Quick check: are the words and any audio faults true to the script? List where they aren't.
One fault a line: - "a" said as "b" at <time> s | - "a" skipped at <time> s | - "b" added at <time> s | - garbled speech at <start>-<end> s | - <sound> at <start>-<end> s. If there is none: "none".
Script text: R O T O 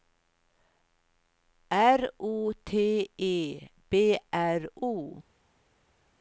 - "E B R" added at 3.2 s